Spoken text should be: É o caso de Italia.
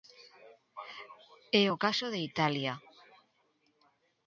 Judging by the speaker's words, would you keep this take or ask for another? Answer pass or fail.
pass